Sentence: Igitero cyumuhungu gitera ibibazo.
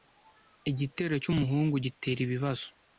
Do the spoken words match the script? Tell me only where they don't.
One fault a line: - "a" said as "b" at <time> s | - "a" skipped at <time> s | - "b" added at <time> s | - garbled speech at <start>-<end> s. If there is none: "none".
none